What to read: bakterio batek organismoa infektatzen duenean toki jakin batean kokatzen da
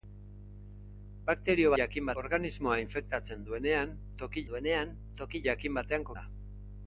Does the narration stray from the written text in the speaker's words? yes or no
yes